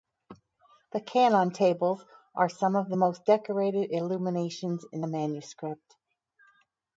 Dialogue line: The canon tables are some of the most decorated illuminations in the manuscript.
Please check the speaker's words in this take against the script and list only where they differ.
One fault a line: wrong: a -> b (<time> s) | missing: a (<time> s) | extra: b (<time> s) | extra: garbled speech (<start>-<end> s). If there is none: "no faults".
no faults